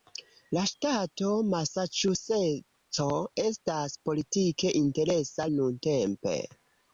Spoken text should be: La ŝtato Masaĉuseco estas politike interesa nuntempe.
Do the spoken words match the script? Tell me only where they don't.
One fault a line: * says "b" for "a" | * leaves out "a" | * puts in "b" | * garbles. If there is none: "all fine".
all fine